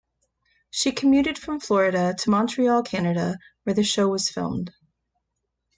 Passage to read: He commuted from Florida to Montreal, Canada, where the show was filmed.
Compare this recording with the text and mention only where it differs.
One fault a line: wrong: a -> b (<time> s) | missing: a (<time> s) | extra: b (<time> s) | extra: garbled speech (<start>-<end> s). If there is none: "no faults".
wrong: He -> She (0.7 s)